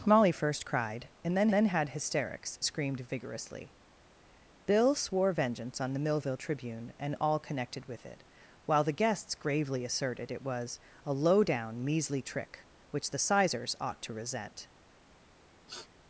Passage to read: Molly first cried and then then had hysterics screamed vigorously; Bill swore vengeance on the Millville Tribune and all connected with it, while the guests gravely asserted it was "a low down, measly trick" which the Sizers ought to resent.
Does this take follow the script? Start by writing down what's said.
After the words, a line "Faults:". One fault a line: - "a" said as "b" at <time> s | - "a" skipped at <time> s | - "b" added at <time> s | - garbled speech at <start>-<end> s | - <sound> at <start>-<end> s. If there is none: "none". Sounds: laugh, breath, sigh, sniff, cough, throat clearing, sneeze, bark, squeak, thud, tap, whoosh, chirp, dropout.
Molly first cried and then then had hysterics screamed vigorously; Bill swore vengeance on the Millville Tribune and all connected with it, while the guests gravely asserted it was "a low down, measly trick" which the Sizers ought to resent.
Faults:
- sniff at 15.7-15.9 s